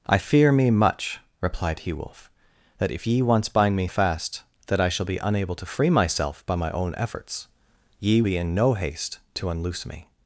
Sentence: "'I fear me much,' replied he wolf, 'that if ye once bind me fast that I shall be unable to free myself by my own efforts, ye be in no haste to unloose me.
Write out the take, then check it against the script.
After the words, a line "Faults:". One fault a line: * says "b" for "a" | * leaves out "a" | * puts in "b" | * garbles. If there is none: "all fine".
"'I fear me much,' replied he wolf, 'that if ye once bind me fast that I shall be unable to free myself by my own efforts, ye be in no haste to unloose me.
Faults:
all fine